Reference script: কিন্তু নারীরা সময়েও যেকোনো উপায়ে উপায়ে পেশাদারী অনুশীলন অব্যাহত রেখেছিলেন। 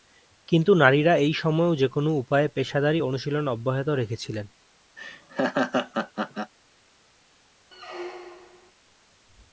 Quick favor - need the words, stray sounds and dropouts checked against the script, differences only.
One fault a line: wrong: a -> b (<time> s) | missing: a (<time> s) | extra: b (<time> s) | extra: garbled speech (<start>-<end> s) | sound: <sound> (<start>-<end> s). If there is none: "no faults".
extra: এই (1.2 s)
missing: উপায়ে (2.5 s)
sound: laugh (5.0-6.5 s)
sound: squeak (7.7-8.7 s)